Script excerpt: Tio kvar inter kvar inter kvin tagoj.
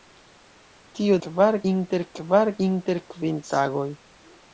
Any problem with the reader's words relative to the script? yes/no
no